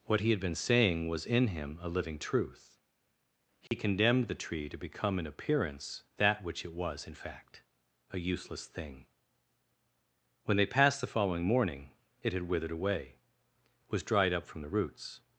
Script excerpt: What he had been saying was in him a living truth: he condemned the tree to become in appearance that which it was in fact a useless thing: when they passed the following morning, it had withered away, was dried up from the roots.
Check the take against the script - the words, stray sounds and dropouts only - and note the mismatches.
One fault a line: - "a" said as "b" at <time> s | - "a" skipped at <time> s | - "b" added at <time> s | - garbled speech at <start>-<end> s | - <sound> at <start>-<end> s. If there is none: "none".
- dropout at 3.7-3.7 s